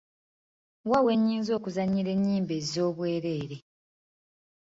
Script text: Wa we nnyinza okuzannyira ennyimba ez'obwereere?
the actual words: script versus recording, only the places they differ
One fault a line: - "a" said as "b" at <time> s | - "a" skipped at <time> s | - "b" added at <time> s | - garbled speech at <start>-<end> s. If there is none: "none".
none